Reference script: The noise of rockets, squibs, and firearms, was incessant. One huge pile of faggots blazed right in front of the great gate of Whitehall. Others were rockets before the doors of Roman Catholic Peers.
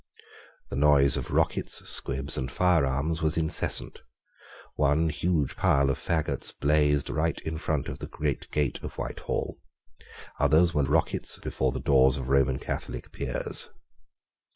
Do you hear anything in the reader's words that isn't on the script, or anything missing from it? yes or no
no